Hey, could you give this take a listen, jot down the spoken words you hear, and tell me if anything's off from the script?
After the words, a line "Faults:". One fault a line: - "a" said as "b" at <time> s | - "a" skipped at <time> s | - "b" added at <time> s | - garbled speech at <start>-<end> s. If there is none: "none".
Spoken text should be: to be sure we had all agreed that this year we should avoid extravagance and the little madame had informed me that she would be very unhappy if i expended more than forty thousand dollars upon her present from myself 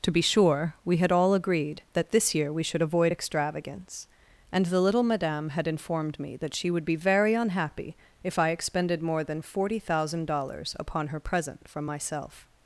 to be sure we had all agreed that this year we should avoid extravagance and the little madame had informed me that she would be very unhappy if i expended more than forty thousand dollars upon her present from myself
Faults:
none